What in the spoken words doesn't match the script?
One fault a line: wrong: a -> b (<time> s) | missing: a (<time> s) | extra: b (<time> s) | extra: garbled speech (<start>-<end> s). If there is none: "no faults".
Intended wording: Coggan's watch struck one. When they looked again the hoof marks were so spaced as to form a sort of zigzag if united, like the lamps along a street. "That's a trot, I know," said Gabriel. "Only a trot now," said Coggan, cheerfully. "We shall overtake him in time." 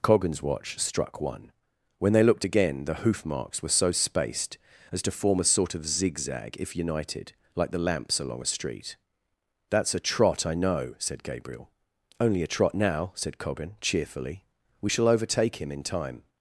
no faults